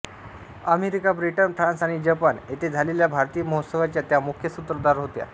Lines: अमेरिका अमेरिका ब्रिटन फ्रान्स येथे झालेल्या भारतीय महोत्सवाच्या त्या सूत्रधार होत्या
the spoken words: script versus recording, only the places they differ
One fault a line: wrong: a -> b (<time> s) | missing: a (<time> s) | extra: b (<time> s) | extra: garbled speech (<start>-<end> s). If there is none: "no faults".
missing: अमेरिका (1.1 s)
extra: आणि जपान (1.8 s)
extra: मुख्य (4.2 s)